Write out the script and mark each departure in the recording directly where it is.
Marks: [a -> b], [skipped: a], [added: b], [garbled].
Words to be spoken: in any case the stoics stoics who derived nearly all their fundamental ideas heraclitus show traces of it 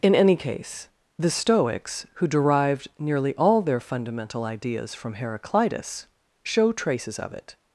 in any case the stoics [skipped: stoics] who derived nearly all their fundamental ideas [added: from] heraclitus show traces of it